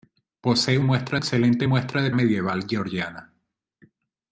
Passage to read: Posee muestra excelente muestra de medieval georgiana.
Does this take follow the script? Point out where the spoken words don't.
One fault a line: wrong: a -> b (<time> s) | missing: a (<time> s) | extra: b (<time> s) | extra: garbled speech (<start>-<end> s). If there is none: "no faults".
no faults